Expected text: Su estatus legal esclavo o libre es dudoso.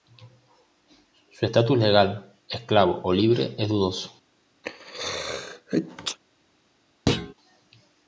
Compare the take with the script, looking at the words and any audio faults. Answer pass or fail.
fail